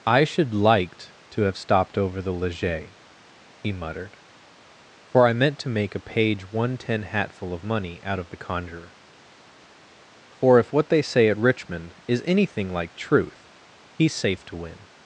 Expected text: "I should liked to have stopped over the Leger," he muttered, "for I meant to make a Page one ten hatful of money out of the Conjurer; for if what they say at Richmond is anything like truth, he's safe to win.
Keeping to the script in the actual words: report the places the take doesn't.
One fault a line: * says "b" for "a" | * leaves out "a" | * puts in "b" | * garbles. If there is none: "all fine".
all fine